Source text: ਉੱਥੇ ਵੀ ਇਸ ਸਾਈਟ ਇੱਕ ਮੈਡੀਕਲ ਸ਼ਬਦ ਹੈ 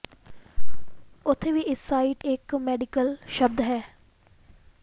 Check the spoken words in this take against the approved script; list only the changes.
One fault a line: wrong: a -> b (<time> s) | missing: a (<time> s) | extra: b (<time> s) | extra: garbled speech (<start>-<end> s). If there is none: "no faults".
no faults